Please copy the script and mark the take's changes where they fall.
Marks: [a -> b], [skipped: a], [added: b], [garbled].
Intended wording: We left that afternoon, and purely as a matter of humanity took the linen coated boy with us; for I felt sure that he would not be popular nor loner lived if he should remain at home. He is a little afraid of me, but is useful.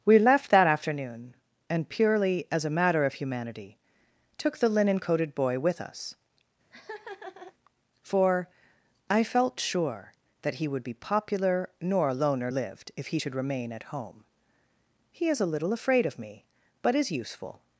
We left that afternoon, and purely as a matter of humanity took the linen coated boy with us; for I felt sure that he would [skipped: not] be popular nor loner lived if he should remain at home. He is a little afraid of me, but is useful.